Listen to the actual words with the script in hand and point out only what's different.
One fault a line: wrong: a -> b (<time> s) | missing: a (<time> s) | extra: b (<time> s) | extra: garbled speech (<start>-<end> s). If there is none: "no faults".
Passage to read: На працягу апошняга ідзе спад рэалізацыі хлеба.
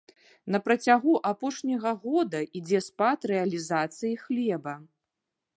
extra: года (2.1 s)